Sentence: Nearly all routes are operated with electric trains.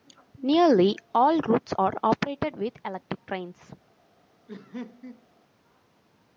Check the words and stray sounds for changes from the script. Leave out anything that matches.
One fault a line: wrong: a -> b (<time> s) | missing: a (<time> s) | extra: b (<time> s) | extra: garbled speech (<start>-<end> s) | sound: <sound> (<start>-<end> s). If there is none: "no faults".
sound: laugh (4.5-5.3 s)